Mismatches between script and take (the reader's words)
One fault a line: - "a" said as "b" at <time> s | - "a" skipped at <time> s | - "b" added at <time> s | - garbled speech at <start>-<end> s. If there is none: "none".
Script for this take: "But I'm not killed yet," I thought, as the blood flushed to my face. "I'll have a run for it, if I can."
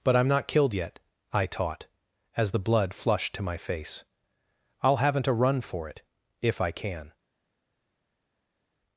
- "thought" said as "taught" at 1.4 s
- "have" said as "haven't" at 5.0 s